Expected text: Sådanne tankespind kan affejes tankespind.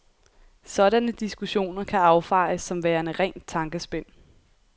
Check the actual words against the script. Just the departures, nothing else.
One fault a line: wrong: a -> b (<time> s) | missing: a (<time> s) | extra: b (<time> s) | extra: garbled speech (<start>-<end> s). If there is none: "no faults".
wrong: tankespind -> diskussioner (1.1 s)
extra: som værende rent (2.6 s)